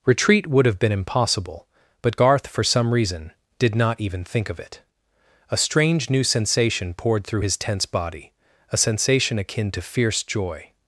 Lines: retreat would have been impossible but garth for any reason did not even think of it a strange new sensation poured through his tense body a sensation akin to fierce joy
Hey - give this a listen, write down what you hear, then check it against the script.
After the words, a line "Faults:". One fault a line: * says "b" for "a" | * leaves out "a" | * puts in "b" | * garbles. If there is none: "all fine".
retreat would have been impossible but garth for some reason did not even think of it a strange new sensation poured through his tense body a sensation akin to fierce joy
Faults:
* says "some" for "any"